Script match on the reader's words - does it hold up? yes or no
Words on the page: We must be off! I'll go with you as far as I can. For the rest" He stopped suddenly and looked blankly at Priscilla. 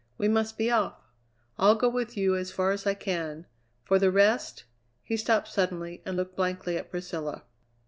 yes